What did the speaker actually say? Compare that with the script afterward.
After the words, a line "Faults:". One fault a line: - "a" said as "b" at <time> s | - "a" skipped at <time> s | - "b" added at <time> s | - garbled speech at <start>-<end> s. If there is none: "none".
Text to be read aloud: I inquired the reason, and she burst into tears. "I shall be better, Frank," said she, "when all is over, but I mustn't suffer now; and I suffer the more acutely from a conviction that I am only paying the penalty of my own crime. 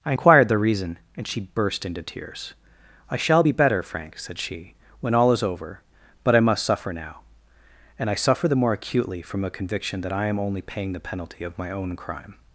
I inquired the reason, and she burst into tears. "I shall be better, Frank," said she, "when all is over, but I must suffer now; and I suffer the more acutely from a conviction that I am only paying the penalty of my own crime.
Faults:
- "mustn't" said as "must" at 6.4 s